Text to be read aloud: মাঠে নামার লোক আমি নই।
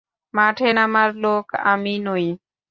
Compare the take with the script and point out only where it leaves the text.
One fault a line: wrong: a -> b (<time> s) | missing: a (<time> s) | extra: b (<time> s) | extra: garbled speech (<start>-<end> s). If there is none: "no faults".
no faults